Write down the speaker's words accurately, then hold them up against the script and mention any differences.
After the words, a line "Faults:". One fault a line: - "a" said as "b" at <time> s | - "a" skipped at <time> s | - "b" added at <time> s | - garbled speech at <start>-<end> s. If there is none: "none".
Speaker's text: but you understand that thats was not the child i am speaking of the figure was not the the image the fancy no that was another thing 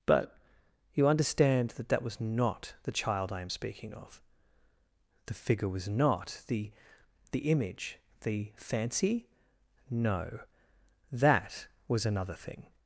but you understand that that was not the child i am speaking of the figure was not the the image the fancy no that was another thing
Faults:
- "thats" said as "that" at 1.9 s